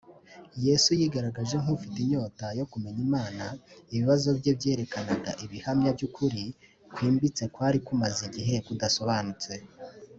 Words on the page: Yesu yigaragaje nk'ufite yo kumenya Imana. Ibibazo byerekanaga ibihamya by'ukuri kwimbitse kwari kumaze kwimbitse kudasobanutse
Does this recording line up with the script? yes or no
no